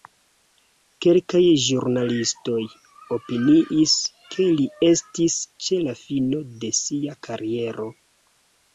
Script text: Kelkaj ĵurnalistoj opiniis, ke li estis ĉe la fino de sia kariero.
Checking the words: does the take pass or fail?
pass